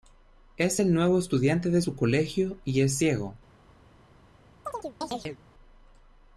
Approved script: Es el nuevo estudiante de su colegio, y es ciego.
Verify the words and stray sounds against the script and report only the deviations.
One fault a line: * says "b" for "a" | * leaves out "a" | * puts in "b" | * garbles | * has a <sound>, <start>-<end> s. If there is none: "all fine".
* has a chirp, 4.7-5.4 s